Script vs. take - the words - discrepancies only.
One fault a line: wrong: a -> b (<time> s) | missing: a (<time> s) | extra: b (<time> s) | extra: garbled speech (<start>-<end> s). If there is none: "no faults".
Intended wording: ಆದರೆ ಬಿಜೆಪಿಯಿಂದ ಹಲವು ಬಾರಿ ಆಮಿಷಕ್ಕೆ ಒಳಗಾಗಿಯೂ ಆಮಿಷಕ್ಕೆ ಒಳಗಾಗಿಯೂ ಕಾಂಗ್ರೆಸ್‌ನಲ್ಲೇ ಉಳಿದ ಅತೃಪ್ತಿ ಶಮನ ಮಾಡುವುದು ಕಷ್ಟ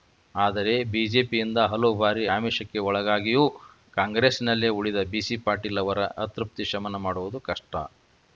wrong: ಆಮಿಷಕ್ಕೆ ಒಳಗಾಗಿಯೂ ಕಾಂಗ್ರೆಸ್‌ನಲ್ಲೇ ಉಳಿದ -> ಕಾಂಗ್ರೆಸ್‌ನಲ್ಲೇ ಉಳಿದ ಬಿಸಿ ಪಾಟೀಲ್ ಅವರ (4.0 s)